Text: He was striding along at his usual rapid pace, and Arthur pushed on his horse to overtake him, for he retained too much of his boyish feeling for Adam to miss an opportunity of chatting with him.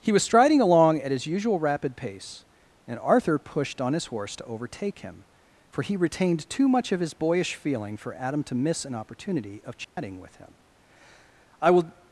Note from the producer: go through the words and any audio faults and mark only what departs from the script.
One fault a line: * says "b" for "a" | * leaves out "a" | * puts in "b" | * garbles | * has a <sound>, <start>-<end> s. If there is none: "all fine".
* has a dropout, 9.8-10.0 s
* puts in "I will"